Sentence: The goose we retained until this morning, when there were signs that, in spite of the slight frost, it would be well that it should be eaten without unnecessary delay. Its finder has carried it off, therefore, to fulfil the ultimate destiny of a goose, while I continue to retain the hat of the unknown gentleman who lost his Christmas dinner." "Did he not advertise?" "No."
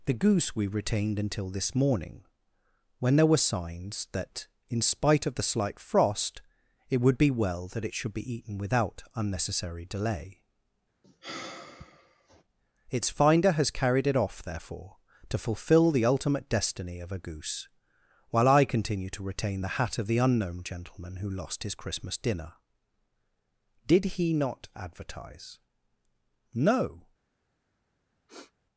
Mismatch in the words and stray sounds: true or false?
true